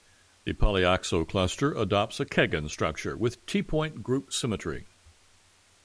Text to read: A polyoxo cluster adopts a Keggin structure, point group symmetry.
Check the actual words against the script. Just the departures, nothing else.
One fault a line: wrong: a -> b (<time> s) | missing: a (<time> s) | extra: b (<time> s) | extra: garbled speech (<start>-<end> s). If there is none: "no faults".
wrong: A -> The (0.5 s)
extra: with T (3.2 s)